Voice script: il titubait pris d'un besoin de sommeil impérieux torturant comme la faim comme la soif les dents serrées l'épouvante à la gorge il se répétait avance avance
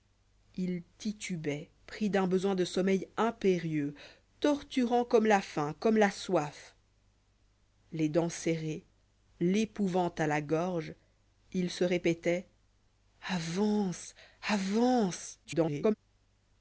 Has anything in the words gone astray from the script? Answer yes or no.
yes